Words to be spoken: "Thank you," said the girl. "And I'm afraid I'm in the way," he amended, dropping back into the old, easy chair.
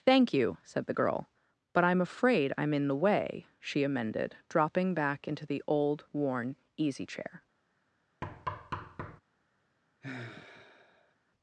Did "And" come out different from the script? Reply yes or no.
yes